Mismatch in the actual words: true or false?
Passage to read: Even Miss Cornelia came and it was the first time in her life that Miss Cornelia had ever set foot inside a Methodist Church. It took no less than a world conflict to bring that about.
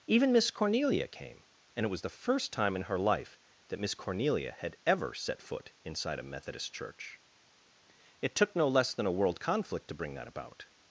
false